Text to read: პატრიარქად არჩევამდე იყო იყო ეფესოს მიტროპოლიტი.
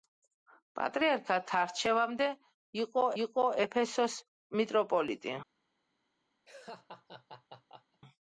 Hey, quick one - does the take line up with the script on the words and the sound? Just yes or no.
no